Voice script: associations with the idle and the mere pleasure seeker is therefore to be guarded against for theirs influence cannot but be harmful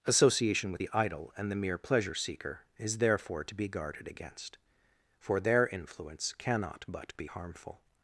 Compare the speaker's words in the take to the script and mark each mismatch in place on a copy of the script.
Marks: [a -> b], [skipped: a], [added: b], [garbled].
[associations -> association] with the idle and the mere pleasure seeker is therefore to be guarded against for [theirs -> their] influence cannot but be harmful